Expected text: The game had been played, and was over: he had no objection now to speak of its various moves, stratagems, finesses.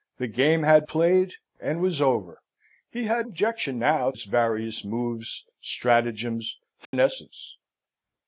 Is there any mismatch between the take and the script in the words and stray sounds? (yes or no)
yes